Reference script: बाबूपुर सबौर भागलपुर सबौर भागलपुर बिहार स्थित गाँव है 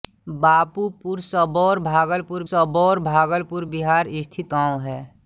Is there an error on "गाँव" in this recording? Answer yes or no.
no